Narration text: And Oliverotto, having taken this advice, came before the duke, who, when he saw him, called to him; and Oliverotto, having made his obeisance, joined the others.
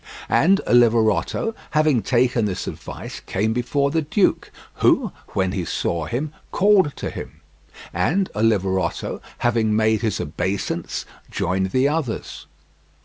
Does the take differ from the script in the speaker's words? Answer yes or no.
no